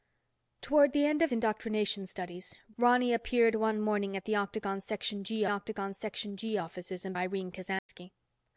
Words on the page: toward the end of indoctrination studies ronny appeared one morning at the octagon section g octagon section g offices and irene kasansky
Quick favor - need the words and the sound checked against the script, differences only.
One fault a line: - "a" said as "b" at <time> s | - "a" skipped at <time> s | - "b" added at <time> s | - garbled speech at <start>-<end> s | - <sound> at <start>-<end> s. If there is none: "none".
- dropout at 7.8-7.9 s